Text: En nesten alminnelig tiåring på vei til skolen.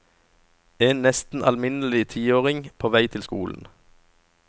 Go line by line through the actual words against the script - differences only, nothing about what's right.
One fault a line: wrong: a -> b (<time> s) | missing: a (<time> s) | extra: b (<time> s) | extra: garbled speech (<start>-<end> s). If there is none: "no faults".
no faults